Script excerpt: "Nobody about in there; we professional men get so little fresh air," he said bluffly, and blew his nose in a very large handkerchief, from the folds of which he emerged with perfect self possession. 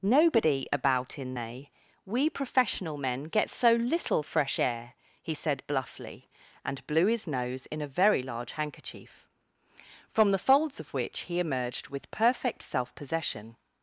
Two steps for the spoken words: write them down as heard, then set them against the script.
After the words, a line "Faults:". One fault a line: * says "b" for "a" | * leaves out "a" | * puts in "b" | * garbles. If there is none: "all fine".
"Nobody about in they; we professional men get so little fresh air," he said bluffly, and blew his nose in a very large handkerchief, from the folds of which he emerged with perfect self possession.
Faults:
* says "they" for "there"